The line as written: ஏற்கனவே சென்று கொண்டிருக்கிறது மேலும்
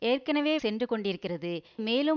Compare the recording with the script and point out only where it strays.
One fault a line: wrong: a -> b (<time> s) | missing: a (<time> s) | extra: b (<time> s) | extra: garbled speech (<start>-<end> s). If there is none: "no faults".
no faults